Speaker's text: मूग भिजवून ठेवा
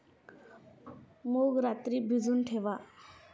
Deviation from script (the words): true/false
true